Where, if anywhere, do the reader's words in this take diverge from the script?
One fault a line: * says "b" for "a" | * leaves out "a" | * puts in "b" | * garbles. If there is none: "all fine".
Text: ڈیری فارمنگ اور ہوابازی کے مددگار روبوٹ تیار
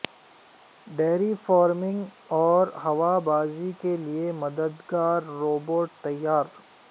* puts in "لیے"